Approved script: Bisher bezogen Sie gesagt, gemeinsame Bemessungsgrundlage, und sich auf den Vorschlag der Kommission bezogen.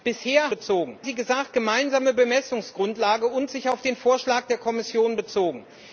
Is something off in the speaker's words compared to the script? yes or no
no